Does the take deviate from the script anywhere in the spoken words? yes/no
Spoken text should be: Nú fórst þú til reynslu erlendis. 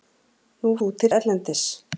yes